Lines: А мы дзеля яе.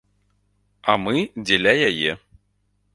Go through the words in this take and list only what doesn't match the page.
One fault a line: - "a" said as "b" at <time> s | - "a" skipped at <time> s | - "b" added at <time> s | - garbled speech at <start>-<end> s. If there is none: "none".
none